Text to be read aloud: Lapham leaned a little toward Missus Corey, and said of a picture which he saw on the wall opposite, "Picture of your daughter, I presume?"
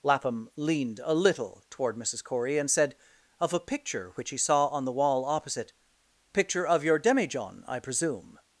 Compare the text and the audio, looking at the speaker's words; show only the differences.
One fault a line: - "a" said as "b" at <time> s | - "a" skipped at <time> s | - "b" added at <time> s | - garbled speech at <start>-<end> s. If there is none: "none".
- "daughter" said as "demijohn" at 7.0 s